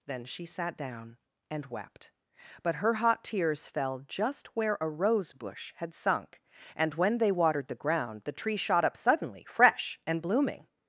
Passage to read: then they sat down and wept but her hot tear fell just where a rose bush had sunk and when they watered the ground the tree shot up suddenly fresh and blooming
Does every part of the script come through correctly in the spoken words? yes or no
no